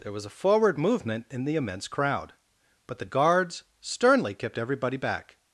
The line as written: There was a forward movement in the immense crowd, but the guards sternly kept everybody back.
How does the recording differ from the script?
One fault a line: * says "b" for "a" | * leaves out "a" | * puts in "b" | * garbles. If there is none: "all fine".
all fine